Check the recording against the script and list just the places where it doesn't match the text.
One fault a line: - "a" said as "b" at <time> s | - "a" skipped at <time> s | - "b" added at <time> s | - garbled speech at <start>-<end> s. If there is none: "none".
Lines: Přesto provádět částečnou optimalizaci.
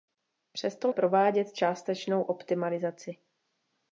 none